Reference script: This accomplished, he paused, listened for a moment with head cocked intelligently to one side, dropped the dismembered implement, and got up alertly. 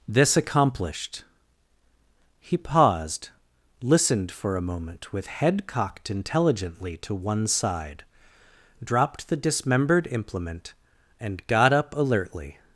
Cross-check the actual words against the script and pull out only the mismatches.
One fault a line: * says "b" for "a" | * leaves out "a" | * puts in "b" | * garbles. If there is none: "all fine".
all fine